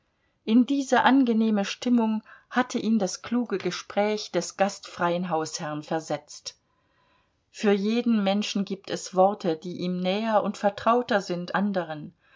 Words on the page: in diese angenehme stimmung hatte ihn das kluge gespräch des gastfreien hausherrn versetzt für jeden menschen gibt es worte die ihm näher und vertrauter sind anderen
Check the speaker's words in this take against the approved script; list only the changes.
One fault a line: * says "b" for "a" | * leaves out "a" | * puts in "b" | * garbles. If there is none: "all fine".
all fine